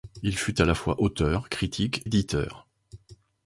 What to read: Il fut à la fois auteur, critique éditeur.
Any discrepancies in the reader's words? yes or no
no